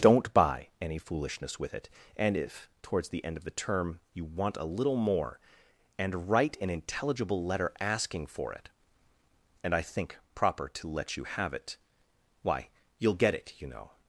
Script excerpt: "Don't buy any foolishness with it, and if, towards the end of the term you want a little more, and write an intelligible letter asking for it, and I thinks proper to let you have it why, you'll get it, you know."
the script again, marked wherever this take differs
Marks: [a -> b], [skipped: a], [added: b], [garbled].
"Don't buy any foolishness with it, and if, towards the end of the term you want a little more, and write an intelligible letter asking for it, and I [thinks -> think] proper to let you have it why, you'll get it, you know."